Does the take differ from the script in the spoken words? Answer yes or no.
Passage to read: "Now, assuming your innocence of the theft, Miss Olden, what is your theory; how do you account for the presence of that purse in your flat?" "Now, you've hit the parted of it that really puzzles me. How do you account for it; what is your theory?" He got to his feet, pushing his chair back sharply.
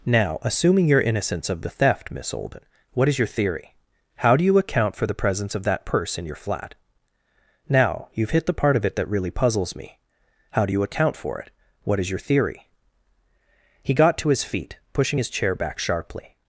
yes